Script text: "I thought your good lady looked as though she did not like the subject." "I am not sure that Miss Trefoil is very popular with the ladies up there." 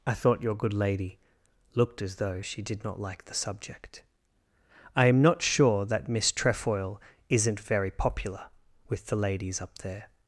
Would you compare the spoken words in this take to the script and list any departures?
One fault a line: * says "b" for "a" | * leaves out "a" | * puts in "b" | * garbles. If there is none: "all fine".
* says "isn't" for "is"